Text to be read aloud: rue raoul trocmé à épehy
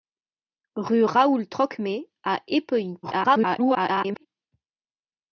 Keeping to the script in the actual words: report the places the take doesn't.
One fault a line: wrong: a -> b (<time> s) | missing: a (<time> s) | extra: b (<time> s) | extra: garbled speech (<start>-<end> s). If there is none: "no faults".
extra: garbled speech (3.0-4.3 s)